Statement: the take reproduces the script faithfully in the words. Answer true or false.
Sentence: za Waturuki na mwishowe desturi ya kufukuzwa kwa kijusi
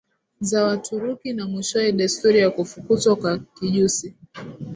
true